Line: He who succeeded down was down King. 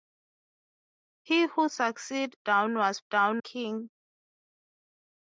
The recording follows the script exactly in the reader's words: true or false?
true